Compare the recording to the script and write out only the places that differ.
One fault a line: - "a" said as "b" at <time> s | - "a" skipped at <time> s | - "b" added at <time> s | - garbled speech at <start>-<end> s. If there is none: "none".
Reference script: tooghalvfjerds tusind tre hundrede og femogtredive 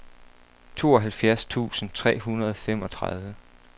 none